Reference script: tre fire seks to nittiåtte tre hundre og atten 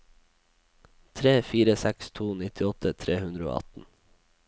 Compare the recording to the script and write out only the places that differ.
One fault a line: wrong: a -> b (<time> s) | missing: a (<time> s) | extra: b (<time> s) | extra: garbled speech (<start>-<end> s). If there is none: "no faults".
no faults